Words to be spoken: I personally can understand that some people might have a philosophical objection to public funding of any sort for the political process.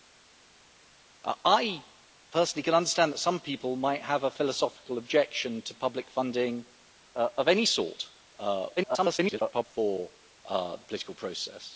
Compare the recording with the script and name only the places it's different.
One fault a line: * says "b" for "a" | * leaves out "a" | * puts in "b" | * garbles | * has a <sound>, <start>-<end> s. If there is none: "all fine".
* garbles